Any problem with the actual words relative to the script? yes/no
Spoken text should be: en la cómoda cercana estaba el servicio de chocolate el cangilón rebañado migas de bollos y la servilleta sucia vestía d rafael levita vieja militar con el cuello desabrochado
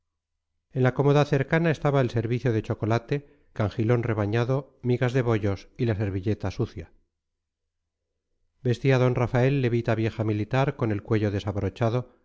yes